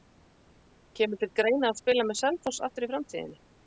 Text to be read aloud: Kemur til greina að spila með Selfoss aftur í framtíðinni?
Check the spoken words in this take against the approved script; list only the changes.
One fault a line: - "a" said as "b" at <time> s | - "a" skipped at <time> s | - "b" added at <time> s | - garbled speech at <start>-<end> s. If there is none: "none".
none